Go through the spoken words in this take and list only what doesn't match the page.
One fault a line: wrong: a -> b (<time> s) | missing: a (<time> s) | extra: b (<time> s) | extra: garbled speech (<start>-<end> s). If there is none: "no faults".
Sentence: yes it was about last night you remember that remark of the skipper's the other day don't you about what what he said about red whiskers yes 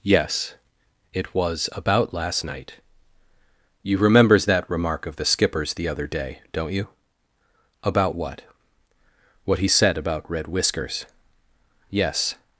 wrong: remember -> remembers (4.0 s)